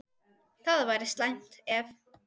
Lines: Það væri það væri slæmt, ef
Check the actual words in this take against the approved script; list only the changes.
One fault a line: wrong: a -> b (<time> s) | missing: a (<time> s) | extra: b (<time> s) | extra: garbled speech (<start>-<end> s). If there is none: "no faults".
missing: það væri (1.1 s)